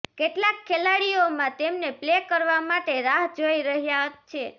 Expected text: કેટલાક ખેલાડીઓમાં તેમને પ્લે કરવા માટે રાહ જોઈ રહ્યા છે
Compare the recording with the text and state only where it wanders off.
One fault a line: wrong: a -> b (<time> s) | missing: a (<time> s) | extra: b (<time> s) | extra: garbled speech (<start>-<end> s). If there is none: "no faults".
no faults